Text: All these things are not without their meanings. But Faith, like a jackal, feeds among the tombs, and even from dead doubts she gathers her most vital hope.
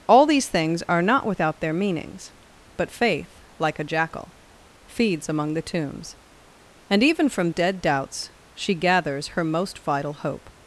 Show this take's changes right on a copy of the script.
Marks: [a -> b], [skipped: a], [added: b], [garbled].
All these things are not without their meanings. But Faith, like a jackal, feeds among the tombs, and even from dead doubts she gathers her most vital hope.